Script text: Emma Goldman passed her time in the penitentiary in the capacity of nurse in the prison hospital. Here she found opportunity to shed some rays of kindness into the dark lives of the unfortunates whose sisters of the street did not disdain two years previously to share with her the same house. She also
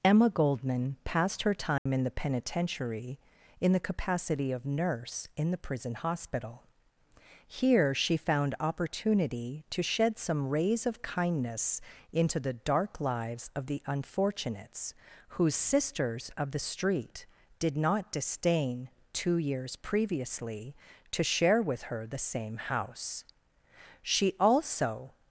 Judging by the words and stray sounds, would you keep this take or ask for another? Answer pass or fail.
fail